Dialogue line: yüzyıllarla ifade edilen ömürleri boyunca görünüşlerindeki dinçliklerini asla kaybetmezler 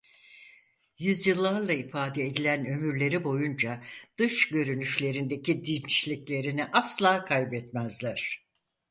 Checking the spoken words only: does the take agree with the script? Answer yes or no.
no